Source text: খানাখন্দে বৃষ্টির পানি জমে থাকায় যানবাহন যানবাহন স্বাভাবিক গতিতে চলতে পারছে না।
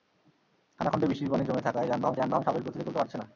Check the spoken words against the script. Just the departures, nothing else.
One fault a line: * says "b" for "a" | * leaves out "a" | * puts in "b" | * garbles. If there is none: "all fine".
all fine